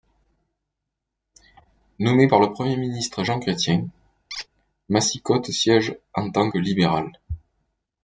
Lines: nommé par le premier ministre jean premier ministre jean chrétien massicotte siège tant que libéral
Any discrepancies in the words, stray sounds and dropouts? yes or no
yes